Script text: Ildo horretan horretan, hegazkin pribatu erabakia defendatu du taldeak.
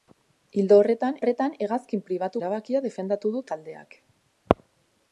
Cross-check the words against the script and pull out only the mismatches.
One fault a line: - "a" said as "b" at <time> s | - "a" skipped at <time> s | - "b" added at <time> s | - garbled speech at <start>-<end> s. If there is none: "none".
none